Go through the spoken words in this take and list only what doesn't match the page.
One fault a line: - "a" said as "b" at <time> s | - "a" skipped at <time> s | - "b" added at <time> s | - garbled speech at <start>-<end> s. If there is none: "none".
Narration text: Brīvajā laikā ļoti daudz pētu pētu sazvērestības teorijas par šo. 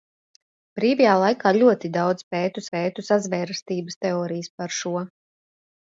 none